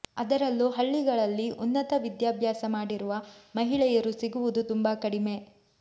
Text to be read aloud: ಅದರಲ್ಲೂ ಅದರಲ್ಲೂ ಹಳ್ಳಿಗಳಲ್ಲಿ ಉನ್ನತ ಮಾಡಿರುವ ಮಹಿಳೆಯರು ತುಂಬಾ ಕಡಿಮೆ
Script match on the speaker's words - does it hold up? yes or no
no